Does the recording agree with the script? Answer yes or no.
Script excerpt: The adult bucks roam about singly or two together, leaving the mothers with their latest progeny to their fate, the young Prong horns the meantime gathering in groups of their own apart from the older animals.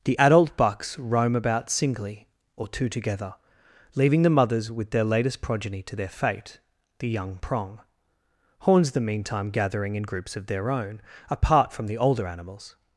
yes